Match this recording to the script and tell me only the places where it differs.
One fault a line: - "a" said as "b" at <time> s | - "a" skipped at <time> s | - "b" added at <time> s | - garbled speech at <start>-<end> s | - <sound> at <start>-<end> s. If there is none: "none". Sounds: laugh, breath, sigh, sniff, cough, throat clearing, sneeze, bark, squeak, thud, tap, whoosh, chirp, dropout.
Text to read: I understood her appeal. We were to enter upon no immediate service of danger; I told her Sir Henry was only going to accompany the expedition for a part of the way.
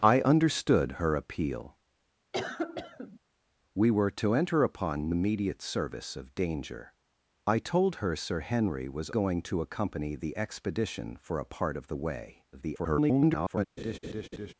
- cough at 2.3-3.2 s
- "no" skipped at 5.1 s
- "only" skipped at 9.1 s
- garbled speech at 12.5-13.7 s
- laugh at 13.8-14.5 s